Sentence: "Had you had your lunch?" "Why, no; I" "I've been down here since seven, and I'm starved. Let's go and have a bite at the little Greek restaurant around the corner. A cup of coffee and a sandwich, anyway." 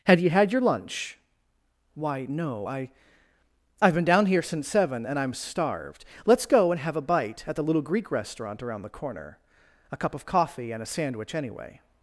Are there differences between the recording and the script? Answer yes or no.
no